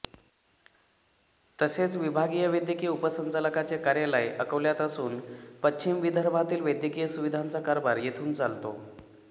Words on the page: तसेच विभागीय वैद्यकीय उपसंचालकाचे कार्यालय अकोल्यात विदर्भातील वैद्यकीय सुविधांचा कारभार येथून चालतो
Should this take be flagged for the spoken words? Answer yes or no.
yes